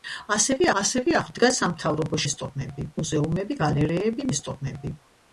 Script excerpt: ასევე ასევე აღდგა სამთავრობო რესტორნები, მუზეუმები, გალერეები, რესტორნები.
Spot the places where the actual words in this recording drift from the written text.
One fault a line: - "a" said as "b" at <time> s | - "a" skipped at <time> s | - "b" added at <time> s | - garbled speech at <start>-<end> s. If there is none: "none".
none